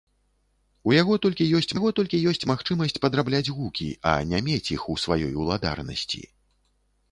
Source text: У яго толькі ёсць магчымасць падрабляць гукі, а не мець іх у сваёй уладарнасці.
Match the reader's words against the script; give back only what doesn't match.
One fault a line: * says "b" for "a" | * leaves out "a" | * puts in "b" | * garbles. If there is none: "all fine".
* puts in "яго толькі ёсць"